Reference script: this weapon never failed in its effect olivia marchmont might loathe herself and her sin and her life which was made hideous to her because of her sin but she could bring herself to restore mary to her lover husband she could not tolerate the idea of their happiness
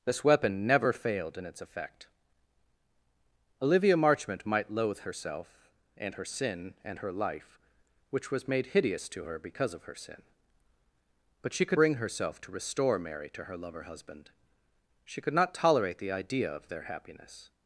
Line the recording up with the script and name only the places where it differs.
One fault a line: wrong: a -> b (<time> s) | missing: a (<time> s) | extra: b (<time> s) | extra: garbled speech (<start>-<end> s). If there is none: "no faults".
no faults